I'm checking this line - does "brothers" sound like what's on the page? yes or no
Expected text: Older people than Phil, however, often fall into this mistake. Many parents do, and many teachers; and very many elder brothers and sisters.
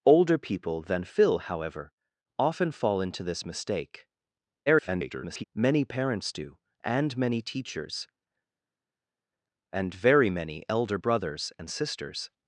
yes